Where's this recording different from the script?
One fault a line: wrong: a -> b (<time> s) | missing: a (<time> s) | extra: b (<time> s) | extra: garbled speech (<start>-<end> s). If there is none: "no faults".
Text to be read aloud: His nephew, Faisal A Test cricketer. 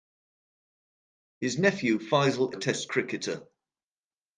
no faults